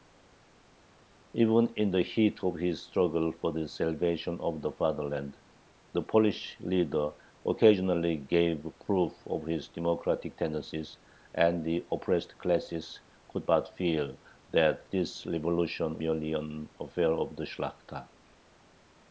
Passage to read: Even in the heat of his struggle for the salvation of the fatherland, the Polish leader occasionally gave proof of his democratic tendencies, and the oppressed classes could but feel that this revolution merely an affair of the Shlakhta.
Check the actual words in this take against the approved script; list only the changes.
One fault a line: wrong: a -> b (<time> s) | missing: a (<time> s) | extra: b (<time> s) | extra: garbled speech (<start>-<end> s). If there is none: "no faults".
no faults